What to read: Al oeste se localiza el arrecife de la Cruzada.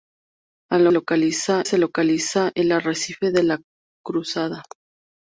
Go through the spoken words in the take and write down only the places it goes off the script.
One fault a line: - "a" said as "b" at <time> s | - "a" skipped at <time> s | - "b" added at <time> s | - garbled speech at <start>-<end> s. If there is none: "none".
- "oeste" said as "localiza" at 0.9 s